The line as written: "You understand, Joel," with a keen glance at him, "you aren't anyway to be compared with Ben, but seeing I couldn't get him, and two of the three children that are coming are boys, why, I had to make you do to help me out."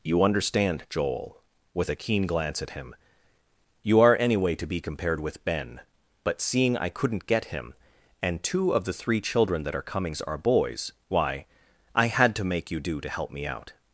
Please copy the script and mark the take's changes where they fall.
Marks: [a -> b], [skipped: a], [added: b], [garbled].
"You understand, Joel," with a keen glance at him, "you [aren't -> are] anyway to be compared with Ben, but seeing I couldn't get him, and two of the three children that are [coming -> comings] are boys, why, I had to make you do to help me out."